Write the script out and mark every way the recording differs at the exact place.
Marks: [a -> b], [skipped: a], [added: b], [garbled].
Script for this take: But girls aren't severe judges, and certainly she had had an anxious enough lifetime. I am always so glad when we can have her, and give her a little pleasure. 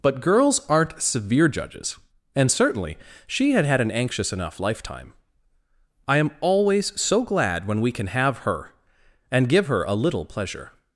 But girls aren't severe judges, and certainly she had had an anxious enough lifetime. I am always so glad when we can have her, and give her a little pleasure.